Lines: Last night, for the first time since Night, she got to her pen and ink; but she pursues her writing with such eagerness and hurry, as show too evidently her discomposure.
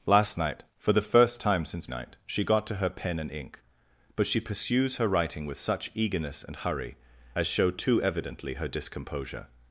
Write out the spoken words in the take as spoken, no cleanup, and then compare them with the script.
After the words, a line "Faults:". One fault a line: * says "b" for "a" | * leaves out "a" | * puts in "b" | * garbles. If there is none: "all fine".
Last night, for the first time since Night, she got to her pen and ink; but she pursues her writing with such eagerness and hurry, as show too evidently her discomposure.
Faults:
all fine